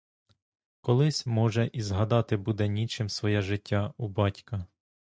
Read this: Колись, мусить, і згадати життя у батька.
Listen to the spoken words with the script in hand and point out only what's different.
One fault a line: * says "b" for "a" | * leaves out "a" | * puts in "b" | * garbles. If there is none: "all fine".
* says "може" for "мусить"
* puts in "буде нічим своє"